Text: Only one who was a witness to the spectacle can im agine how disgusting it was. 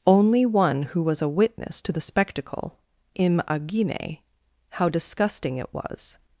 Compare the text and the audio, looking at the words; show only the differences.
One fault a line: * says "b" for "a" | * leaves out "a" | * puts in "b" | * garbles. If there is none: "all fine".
* leaves out "can"